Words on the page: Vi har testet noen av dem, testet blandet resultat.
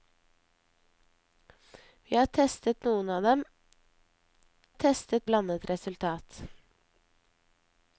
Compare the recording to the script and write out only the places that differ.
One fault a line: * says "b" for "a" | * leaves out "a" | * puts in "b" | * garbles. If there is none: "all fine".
all fine